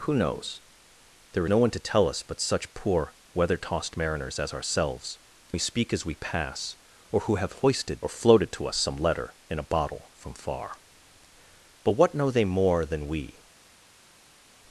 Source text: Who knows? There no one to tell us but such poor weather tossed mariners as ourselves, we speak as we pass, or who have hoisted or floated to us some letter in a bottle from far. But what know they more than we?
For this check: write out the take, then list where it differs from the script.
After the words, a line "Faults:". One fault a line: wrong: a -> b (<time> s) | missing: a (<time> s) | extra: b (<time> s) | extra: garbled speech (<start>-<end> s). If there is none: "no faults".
Who knows? There no one to tell us but such poor weather tossed mariners as ourselves, we speak as we pass, or who have hoisted or floated to us some letter in a bottle from far. But what know they more than we?
Faults:
no faults